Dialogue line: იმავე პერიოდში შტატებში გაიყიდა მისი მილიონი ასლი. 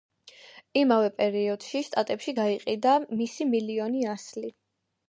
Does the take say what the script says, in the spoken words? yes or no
yes